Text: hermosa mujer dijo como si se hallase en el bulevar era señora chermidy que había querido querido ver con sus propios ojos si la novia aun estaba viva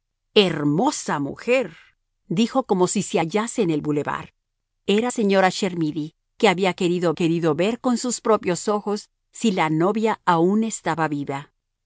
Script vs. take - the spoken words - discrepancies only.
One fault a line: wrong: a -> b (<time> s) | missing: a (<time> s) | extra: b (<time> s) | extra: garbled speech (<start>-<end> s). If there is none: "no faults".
no faults